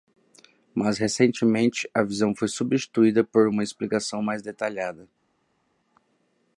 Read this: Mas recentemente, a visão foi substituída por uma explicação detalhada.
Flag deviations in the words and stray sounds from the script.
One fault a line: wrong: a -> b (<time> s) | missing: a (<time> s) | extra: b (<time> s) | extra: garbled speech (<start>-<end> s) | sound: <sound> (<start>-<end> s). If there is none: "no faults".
extra: mais (4.2 s)